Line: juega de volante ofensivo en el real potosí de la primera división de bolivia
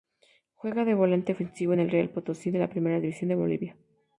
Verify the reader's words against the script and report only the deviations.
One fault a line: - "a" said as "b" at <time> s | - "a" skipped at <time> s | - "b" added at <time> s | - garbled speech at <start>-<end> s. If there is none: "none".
none